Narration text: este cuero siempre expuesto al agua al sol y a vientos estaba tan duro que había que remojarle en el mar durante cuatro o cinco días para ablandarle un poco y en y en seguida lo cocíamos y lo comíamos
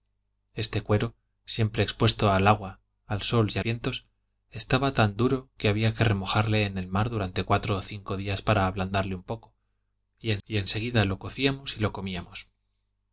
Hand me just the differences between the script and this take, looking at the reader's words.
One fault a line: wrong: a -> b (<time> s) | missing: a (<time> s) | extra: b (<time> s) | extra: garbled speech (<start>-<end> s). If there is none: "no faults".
no faults